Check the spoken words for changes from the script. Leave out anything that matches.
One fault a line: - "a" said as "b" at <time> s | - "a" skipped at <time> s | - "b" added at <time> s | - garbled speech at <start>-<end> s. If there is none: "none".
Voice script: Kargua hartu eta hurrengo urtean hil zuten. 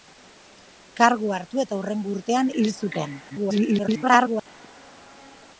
- garbled speech at 3.3-4.5 s